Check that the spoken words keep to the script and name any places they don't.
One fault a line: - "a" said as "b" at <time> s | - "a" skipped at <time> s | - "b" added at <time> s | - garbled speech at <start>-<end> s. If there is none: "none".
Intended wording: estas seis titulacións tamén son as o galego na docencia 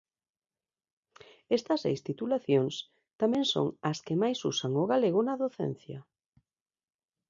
- "que máis usan" added at 4.0 s